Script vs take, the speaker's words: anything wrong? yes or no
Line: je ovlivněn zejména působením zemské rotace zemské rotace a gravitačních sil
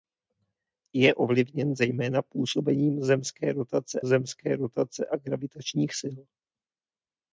no